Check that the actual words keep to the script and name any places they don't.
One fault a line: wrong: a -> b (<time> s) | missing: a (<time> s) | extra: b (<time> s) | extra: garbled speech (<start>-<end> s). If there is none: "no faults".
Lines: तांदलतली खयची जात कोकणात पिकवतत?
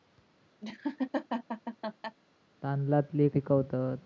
missing: खयची जात कोकणात (3.3 s)